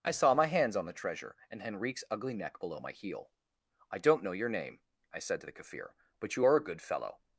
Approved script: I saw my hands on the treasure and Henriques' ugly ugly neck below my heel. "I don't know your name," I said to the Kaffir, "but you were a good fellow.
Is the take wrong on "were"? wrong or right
wrong